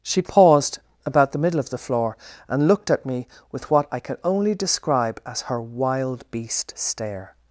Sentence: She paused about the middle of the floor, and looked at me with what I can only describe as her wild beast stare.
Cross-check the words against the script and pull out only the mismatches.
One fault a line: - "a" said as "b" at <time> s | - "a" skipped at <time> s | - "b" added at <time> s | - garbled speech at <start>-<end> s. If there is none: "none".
none